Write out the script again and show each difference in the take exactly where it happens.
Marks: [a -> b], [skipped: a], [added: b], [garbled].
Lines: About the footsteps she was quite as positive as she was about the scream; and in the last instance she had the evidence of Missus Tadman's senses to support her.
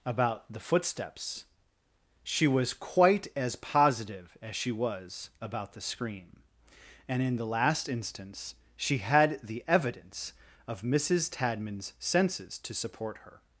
About the footsteps she was quite as positive as she was about the scream; and in the last instance she had the evidence of Missus Tadman's senses to support her.